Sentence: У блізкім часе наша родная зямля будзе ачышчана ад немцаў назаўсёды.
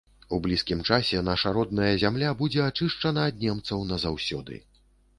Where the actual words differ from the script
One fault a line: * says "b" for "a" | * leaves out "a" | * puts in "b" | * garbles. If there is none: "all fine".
all fine